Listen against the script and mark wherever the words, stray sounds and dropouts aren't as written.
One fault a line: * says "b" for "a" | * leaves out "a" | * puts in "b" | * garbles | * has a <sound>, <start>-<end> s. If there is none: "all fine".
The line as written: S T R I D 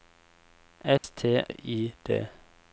* has a dropout, 1.0-1.0 s
* leaves out "R"